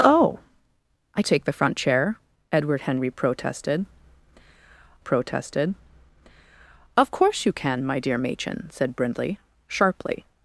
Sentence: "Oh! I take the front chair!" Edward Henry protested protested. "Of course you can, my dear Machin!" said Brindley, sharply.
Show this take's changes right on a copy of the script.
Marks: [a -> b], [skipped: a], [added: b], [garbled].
"Oh! I take the front chair!" Edward Henry protested protested. "Of course you can, my dear Machin!" said Brindley, sharply.